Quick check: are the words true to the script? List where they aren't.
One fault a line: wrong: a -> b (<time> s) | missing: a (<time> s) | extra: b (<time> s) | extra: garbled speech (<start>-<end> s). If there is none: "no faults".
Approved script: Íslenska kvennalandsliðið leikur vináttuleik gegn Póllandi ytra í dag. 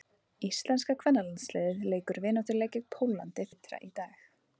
no faults